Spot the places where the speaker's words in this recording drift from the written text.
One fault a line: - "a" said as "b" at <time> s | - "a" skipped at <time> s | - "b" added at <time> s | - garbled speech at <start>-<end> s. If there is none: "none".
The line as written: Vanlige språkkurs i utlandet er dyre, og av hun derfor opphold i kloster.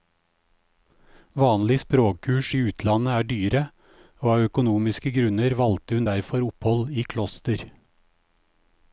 - "økonomiske grunner valgte" added at 4.5 s